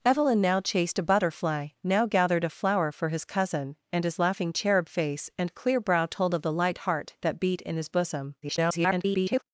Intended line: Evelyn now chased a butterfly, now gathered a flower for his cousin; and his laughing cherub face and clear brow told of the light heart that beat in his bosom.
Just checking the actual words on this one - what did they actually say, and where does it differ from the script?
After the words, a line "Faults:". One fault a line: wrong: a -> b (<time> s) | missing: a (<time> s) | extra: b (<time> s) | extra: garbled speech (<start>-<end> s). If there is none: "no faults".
Evelyn now chased a butterfly, now gathered a flower for his cousin; and his laughing cherub face and clear brow told of the light heart that beat in his bosom. [garbled]
Faults:
extra: garbled speech (8.4-9.4 s)